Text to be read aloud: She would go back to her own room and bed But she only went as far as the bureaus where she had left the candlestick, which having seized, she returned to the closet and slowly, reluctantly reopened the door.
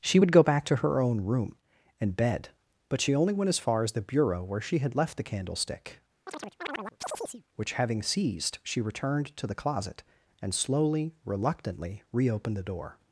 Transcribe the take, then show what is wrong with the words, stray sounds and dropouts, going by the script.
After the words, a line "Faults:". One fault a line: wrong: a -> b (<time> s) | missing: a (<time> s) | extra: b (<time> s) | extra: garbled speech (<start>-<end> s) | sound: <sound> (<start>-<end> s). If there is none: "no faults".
She would go back to her own room and bed But she only went as far as the bureau where she had left the candlestick, which having seized, she returned to the closet and slowly, reluctantly reopened the door.
Faults:
wrong: bureaus -> bureau (4.0 s)
sound: chirp (6.3-7.4 s)